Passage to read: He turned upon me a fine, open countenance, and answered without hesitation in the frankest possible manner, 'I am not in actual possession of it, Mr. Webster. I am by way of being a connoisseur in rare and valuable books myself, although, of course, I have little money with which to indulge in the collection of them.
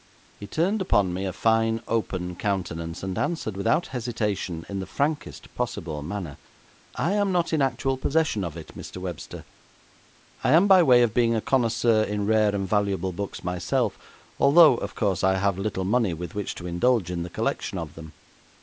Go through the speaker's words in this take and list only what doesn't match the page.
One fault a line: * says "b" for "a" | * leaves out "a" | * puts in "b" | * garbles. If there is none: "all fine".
all fine